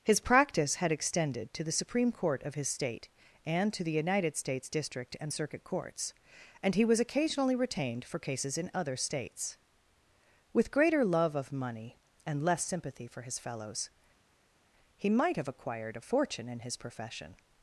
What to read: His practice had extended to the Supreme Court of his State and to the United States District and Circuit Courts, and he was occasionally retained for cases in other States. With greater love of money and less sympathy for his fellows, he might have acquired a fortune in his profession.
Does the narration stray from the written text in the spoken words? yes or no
no